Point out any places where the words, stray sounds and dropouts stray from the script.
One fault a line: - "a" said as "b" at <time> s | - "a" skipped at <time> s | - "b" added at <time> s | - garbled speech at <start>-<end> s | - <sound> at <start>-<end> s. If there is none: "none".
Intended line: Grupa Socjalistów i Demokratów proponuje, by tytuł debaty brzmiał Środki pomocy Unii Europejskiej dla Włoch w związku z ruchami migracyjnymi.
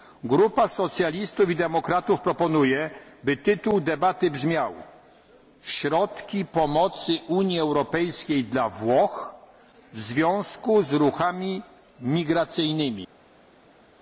none